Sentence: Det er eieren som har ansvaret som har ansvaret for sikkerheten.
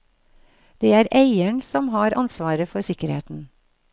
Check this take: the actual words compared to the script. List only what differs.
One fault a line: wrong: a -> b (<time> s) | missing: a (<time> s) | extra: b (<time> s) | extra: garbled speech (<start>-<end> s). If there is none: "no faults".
missing: som har ansvaret (2.7 s)